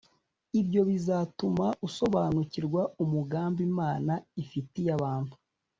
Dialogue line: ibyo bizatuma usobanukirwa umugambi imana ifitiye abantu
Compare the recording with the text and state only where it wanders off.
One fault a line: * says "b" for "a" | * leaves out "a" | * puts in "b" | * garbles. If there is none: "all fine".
all fine